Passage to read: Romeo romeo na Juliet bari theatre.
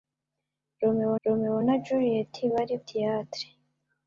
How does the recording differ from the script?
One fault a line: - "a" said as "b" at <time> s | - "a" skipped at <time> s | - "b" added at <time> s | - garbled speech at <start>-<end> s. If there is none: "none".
none